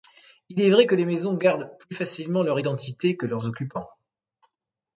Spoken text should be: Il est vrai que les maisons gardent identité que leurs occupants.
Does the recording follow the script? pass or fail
fail